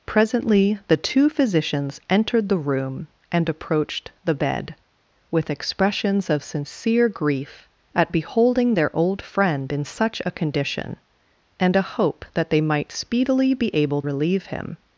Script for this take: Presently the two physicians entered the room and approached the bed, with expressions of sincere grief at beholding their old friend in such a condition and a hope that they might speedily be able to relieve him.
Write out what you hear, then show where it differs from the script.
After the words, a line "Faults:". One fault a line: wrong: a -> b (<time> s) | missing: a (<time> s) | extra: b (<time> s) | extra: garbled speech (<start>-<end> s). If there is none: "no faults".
Presently the two physicians entered the room and approached the bed, with expressions of sincere grief at beholding their old friend in such a condition and a hope that they might speedily be able relieve him.
Faults:
missing: to (14.0 s)